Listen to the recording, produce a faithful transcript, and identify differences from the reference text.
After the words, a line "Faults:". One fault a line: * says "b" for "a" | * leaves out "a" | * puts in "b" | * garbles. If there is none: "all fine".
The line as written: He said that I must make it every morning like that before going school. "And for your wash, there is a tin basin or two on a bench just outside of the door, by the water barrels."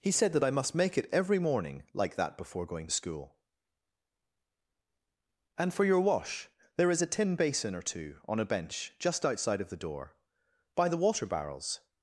He said that I must make it every morning like that before going school. "And for your wash, there is a tin basin or two on a bench just outside of the door, by the water barrels."
Faults:
all fine